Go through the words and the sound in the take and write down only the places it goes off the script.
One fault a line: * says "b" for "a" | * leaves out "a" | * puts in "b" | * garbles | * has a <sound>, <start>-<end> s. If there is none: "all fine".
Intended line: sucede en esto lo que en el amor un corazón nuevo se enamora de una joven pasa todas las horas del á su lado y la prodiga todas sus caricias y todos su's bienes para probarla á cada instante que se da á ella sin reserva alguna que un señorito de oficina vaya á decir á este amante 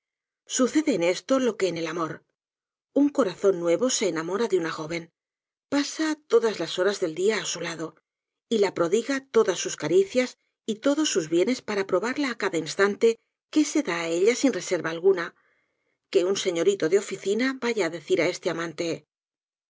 * puts in "dia"